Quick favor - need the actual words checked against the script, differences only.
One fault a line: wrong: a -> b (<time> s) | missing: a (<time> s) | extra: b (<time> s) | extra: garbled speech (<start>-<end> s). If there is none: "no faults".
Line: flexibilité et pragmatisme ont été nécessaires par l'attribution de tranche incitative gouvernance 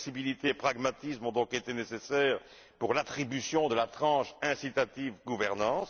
extra: donc (1.3 s)
wrong: par -> pour (2.8 s)
extra: la (3.7 s)